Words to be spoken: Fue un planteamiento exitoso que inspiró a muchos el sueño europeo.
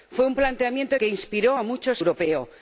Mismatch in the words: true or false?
true